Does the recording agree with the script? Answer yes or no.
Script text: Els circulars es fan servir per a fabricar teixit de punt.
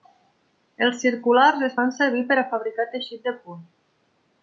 yes